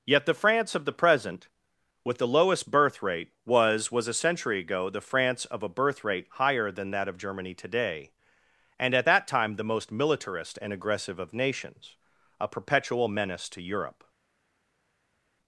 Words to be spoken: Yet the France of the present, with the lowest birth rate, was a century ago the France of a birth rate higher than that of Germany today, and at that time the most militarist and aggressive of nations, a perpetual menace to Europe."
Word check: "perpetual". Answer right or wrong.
right